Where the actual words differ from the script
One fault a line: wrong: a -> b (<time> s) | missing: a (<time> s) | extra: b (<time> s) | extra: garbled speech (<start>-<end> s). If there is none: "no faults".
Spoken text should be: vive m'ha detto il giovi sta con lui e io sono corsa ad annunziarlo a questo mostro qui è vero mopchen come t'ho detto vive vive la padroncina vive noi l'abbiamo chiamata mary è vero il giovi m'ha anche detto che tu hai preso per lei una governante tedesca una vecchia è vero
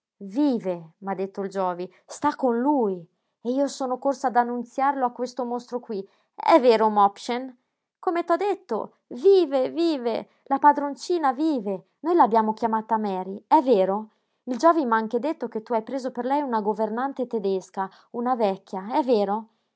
no faults